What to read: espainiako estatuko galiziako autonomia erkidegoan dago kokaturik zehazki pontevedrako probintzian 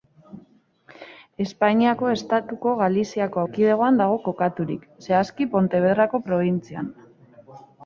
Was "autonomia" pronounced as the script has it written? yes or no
no